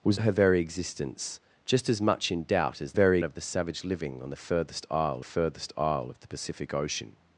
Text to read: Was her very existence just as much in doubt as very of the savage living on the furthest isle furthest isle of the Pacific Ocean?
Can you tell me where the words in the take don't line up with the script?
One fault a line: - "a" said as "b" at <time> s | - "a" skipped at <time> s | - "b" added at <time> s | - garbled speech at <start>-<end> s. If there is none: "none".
none